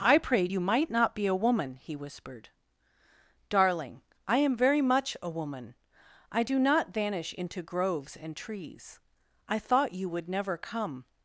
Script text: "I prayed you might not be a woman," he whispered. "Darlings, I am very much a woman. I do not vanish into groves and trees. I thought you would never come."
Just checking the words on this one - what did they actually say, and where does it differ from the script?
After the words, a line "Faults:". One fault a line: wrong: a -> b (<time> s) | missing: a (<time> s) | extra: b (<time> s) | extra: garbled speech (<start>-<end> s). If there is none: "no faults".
"I prayed you might not be a woman," he whispered. "Darling, I am very much a woman. I do not vanish into groves and trees. I thought you would never come."
Faults:
wrong: Darlings -> Darling (3.5 s)